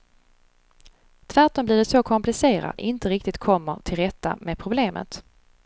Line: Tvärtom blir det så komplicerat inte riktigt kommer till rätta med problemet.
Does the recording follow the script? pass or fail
pass